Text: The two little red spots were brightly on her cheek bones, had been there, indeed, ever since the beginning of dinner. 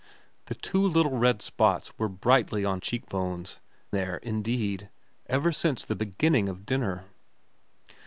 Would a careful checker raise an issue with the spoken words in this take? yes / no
yes